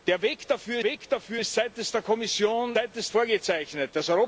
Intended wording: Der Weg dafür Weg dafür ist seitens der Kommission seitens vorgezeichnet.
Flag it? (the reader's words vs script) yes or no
no